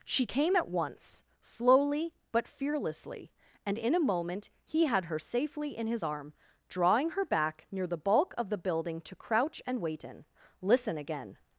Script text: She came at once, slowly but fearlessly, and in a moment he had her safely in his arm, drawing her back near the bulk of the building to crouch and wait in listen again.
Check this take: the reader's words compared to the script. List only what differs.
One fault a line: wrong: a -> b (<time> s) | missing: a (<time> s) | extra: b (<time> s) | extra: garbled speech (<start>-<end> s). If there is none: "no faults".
no faults